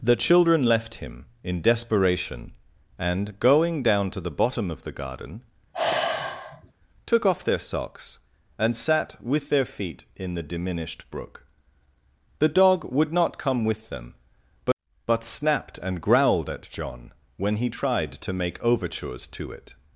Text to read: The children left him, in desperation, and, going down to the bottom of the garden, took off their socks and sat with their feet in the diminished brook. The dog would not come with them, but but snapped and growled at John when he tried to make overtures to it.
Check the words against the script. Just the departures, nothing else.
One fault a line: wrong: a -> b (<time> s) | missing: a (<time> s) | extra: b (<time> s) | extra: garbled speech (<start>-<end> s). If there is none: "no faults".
no faults